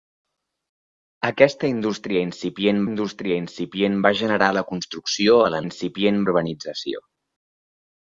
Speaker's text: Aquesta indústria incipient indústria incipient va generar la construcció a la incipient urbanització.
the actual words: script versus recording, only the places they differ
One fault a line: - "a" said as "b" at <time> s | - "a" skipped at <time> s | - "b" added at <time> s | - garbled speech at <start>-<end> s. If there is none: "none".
none